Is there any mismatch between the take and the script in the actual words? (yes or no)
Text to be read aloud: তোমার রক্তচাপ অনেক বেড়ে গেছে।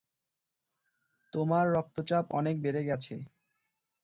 no